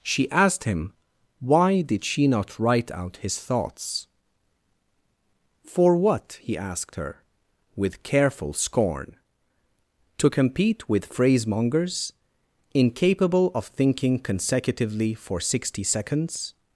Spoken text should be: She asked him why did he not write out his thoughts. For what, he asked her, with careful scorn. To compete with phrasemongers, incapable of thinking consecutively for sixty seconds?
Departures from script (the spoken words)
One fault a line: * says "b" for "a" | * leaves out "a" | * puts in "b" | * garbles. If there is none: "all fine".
* says "she" for "he"